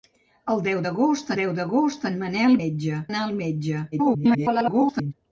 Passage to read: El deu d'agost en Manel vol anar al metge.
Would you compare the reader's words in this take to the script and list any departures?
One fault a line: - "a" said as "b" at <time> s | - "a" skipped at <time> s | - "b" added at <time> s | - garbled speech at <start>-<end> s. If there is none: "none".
- "deu d'agost" added at 1.4 s
- "vol" said as "metge" at 2.6 s
- garbled speech at 3.9-5.1 s